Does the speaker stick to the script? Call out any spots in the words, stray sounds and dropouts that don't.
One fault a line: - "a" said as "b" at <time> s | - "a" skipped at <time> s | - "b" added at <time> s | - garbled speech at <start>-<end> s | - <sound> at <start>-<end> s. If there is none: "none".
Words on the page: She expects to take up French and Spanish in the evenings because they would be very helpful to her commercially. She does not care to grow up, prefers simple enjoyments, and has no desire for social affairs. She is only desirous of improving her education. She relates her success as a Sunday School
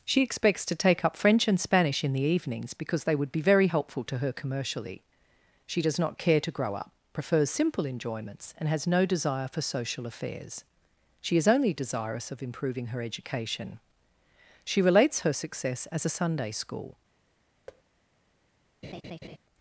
- thud at 17.7-17.8 s
- laugh at 18.8-19.4 s